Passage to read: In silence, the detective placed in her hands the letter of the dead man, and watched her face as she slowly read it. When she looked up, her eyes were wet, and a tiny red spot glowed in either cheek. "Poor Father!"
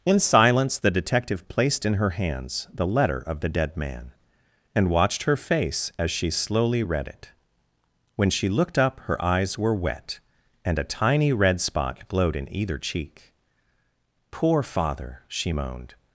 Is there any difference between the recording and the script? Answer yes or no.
yes